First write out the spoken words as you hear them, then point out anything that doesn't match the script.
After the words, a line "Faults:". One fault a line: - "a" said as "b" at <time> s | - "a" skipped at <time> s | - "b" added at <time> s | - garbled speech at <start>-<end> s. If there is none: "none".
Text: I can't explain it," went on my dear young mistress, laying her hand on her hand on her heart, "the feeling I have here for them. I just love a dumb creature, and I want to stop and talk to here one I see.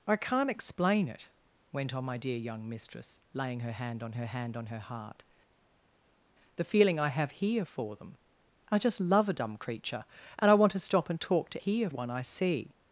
I can't explain it," went on my dear young mistress, laying her hand on her hand on her heart, "the feeling I have here for them. I just love a dumb creature, and I want to stop and talk to here one I see.
Faults:
none